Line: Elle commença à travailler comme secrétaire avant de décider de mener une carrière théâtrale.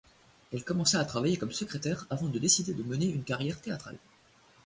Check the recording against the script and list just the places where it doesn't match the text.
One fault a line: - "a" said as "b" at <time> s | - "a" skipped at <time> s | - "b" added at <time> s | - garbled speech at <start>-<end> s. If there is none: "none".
none